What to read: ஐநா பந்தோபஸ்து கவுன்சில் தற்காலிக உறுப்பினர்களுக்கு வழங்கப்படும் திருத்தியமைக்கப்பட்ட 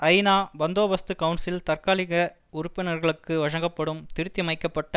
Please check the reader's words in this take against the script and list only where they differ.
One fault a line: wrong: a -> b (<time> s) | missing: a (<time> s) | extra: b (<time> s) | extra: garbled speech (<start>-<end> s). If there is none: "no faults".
no faults